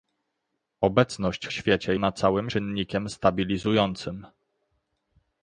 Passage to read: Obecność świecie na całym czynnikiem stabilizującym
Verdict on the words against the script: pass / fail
pass